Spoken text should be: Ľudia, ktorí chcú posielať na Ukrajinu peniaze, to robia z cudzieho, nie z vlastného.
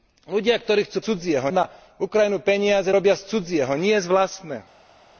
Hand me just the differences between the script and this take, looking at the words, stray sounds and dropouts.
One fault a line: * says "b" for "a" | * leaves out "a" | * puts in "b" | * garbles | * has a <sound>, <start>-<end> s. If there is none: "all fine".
* says "cudzieho" for "posielať"
* leaves out "to"